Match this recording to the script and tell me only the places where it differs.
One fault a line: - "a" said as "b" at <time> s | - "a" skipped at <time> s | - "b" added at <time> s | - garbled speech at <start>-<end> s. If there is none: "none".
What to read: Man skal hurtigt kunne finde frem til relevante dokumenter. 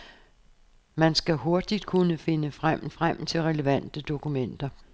- "frem" added at 2.9 s